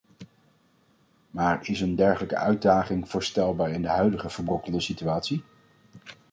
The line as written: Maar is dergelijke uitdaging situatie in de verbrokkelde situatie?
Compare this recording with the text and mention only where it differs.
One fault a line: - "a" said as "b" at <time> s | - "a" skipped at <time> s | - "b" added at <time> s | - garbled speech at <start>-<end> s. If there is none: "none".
- "een" added at 1.8 s
- "situatie" said as "voorstelbaar" at 3.1 s
- "huidige" added at 3.9 s